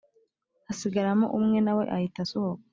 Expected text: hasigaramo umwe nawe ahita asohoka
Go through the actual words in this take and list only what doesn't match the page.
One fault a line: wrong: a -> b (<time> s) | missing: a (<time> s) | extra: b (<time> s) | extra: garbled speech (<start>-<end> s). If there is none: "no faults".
no faults